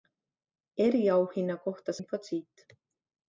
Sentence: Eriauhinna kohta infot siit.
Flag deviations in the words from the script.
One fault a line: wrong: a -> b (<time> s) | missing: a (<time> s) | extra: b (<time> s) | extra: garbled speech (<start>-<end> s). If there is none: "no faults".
no faults